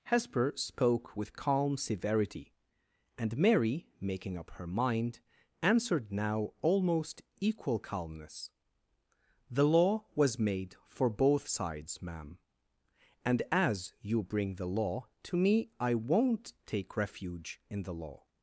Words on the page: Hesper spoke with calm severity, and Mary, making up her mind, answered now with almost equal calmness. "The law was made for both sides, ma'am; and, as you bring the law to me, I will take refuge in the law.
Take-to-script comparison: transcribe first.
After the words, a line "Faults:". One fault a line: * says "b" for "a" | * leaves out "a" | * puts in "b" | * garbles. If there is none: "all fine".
Hesper spoke with calm severity, and Mary, making up her mind, answered now almost equal calmness. "The law was made for both sides, ma'am; and, as you bring the law to me, I won't take refuge in the law.
Faults:
* leaves out "with"
* says "won't" for "will"